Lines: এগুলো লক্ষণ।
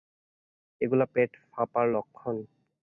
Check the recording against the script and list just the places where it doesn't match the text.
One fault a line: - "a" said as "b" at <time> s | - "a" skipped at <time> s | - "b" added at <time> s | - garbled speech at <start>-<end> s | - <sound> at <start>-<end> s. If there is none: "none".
- "পেট ফাঁপার" added at 1.1 s